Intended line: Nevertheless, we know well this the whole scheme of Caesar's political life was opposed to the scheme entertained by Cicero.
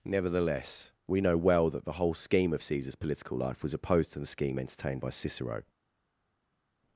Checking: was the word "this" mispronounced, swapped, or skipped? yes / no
yes